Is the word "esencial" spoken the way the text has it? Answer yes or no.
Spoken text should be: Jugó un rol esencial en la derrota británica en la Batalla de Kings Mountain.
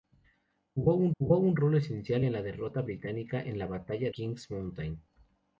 yes